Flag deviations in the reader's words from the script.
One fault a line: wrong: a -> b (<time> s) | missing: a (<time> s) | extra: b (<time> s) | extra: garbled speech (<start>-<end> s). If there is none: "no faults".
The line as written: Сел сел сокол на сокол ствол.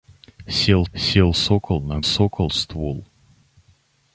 no faults